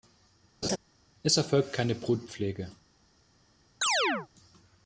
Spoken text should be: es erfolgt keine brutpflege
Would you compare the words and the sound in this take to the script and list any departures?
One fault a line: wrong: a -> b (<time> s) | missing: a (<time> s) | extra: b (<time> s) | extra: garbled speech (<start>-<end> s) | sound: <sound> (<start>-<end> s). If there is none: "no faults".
sound: laugh (0.6-0.8 s)
sound: chirp (3.8-4.3 s)